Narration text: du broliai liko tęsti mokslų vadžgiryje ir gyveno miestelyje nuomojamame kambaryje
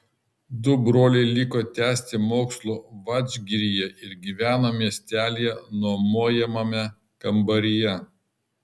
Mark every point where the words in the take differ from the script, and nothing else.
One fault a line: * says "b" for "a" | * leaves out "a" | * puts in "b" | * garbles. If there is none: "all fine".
all fine